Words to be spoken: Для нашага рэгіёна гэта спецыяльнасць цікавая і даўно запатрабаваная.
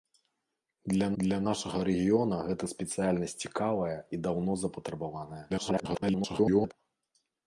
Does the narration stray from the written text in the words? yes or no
yes